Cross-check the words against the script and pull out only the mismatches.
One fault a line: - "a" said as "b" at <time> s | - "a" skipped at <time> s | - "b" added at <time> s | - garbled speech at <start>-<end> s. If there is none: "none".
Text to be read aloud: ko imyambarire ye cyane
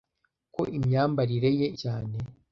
none